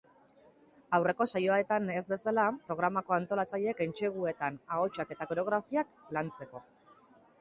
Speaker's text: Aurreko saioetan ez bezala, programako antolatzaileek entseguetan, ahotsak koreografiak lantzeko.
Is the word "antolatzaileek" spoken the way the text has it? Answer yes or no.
yes